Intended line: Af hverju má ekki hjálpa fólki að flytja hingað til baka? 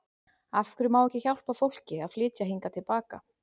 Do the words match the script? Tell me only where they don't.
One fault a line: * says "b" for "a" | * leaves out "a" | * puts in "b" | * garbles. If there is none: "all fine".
all fine